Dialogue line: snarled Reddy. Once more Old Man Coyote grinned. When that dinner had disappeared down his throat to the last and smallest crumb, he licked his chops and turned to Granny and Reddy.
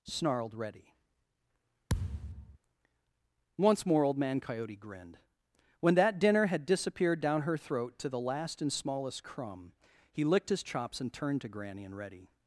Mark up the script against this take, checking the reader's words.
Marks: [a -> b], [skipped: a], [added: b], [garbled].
snarled Reddy. Once more Old Man Coyote grinned. When that dinner had disappeared down [his -> her] throat to the last and smallest crumb, he licked his chops and turned to Granny and Reddy.